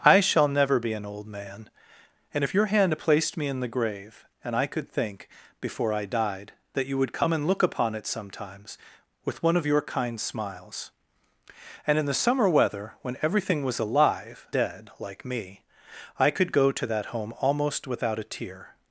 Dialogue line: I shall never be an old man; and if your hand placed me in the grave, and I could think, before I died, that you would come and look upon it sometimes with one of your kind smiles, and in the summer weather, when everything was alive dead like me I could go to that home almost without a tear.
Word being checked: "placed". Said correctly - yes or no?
yes